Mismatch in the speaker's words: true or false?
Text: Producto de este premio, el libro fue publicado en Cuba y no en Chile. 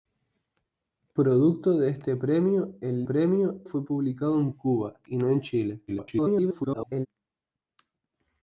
true